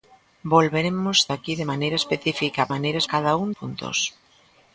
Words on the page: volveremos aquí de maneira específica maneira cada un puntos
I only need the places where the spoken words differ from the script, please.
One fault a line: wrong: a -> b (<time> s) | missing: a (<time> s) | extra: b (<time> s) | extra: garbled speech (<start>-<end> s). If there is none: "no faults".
no faults